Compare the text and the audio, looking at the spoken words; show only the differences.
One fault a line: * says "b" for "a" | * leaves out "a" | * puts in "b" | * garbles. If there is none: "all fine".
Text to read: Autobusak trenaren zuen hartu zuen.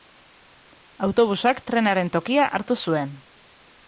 * says "tokia" for "zuen"